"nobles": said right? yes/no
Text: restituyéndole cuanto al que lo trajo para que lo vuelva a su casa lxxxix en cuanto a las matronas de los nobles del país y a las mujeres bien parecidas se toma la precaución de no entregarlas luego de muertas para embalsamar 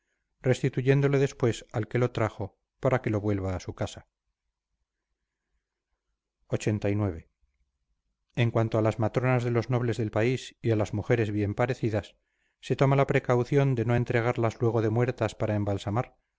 yes